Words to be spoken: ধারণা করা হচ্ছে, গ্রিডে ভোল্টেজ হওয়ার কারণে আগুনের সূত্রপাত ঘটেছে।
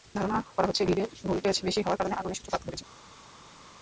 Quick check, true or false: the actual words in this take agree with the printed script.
false